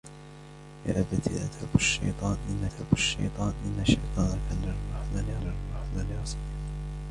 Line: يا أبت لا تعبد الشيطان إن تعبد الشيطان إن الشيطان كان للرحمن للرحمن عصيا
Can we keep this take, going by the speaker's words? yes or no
yes